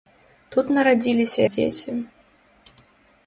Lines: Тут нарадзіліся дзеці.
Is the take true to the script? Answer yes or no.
yes